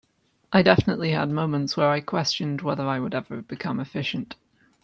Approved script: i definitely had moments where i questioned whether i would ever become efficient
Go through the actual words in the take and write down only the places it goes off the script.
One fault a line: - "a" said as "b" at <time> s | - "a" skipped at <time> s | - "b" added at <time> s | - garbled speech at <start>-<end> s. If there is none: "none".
none